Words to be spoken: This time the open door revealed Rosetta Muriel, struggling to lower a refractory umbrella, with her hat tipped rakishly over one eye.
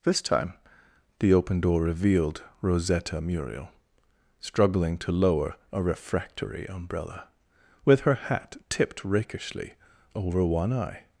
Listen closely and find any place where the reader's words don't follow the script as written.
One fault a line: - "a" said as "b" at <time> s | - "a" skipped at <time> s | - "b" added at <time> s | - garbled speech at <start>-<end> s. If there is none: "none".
none